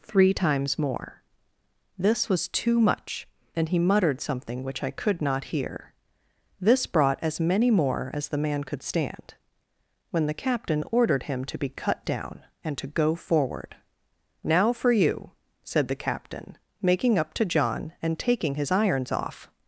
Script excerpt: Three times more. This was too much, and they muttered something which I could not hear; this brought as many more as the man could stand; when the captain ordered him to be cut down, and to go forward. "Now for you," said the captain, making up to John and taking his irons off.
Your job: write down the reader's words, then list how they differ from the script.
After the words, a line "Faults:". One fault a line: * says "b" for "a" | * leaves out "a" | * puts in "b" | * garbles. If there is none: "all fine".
Three times more. This was too much, and he muttered something which I could not hear; this brought as many more as the man could stand; when the captain ordered him to be cut down, and to go forward. "Now for you," said the captain, making up to John and taking his irons off.
Faults:
* says "he" for "they"